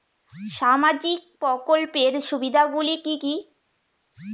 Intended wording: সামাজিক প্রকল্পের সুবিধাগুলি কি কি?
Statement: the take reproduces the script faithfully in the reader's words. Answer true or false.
true